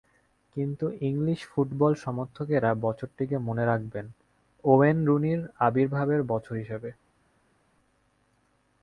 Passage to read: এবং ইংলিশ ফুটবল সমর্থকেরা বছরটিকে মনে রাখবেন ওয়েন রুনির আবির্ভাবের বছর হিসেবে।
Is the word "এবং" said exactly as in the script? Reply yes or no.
no